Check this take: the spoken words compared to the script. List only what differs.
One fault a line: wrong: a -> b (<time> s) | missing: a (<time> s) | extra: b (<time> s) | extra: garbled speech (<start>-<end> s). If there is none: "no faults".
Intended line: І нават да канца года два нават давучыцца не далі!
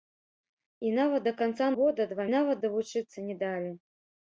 no faults